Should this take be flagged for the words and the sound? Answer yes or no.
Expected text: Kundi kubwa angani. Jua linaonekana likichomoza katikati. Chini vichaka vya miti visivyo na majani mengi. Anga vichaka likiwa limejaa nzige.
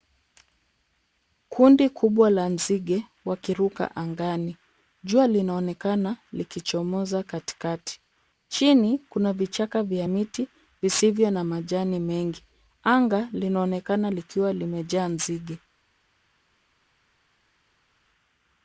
yes